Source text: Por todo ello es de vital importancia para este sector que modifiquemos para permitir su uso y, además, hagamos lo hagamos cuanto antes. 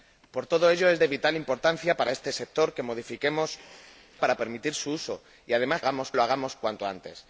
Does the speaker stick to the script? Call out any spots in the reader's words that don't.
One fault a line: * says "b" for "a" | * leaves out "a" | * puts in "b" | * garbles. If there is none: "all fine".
all fine